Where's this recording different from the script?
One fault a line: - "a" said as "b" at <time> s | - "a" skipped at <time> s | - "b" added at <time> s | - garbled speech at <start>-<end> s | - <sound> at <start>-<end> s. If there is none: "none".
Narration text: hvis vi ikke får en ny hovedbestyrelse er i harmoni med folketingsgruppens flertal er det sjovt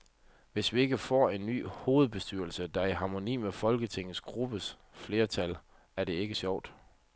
- "der" added at 2.7 s
- "ikke" added at 6.1 s